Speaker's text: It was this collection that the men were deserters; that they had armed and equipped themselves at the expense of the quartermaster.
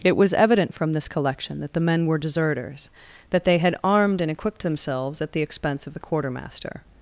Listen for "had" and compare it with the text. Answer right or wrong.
right